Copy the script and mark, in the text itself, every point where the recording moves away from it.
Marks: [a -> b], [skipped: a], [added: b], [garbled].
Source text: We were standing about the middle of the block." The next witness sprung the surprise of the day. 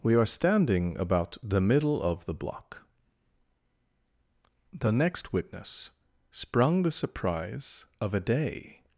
We [were -> are] standing about the middle of the block." The next witness sprung the surprise of [the -> a] day.